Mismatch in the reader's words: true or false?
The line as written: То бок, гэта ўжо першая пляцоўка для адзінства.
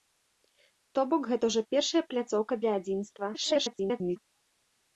true